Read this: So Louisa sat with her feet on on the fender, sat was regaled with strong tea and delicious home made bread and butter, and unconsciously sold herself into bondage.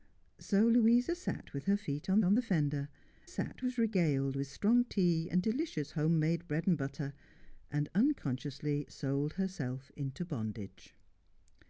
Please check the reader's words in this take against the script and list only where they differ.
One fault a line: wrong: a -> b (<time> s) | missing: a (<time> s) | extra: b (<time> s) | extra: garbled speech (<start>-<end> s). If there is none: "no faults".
no faults